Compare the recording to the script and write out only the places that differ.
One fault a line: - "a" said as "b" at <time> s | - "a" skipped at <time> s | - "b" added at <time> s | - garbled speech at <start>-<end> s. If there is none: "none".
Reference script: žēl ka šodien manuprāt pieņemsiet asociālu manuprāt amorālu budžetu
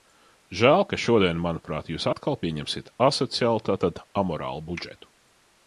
- "jūs atkal" added at 1.9 s
- "manuprāt" said as "tātad" at 3.7 s